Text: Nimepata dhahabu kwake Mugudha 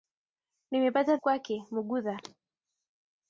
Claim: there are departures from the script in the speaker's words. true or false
true